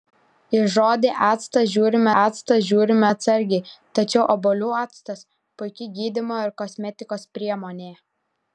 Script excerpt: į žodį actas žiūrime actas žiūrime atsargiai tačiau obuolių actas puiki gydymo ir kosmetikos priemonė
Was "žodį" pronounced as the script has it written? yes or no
yes